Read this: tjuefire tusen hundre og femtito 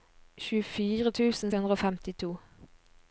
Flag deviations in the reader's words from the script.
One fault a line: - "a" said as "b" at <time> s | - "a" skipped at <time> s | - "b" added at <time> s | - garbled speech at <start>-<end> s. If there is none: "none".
none